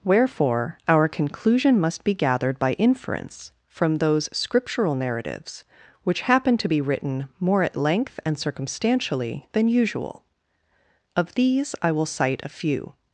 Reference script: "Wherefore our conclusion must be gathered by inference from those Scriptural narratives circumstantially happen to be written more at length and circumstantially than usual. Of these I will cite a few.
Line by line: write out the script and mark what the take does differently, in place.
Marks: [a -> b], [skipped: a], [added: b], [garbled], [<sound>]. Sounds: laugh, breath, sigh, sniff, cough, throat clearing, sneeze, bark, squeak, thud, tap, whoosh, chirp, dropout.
"Wherefore our conclusion must be gathered by inference from those Scriptural narratives [circumstantially -> which] happen to be written more at length and circumstantially than usual. Of these I will cite a few.